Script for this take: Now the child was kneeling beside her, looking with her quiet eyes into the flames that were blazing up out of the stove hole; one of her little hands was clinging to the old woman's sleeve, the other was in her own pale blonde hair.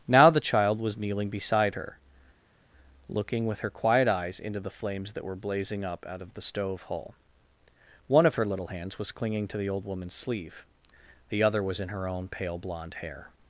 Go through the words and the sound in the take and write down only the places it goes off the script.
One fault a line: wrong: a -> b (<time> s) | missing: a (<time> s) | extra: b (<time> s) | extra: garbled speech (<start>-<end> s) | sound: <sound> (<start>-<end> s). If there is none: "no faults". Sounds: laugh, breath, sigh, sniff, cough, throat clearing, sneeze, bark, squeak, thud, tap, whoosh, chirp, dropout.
no faults